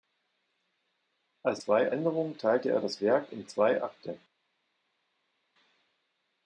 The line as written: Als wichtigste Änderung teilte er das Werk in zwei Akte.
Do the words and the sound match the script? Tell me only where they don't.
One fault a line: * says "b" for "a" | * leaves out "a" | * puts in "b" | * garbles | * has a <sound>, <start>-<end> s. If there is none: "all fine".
* says "zwei" for "wichtigste"